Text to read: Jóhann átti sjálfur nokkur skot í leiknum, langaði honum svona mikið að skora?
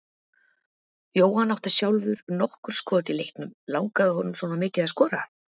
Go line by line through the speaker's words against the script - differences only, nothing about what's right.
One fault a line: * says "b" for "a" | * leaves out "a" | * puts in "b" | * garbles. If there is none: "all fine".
all fine